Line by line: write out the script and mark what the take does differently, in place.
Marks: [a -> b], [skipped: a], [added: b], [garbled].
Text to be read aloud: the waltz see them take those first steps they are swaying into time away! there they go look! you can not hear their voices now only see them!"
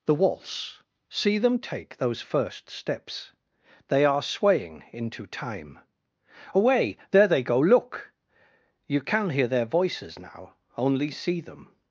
the waltz see them take those first steps they are swaying into time away! there they go look! you can [skipped: not] hear their voices now only see them!"